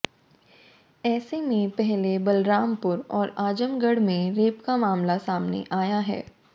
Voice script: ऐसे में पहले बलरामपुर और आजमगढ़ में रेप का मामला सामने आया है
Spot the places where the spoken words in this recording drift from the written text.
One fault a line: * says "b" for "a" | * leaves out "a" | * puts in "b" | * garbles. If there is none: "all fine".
all fine